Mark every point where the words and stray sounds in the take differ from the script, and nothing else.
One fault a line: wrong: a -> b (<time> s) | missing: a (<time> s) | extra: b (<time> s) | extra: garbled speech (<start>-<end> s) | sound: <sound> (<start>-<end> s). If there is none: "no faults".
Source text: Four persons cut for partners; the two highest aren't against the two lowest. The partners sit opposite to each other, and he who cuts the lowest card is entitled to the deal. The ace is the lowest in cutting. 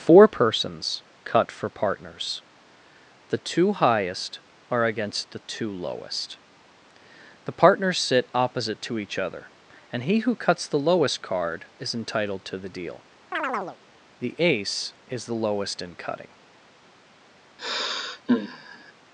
wrong: aren't -> are (4.7 s)
sound: chirp (13.3-13.8 s)
sound: sigh (17.6-18.9 s)